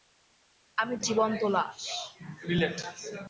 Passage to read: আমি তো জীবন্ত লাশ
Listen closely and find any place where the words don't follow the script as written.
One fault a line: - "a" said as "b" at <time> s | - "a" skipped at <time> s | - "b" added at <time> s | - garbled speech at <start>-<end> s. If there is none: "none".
none